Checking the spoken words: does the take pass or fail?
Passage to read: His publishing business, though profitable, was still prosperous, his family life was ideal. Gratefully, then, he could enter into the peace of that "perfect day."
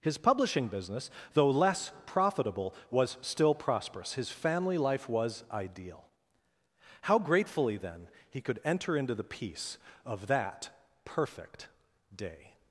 fail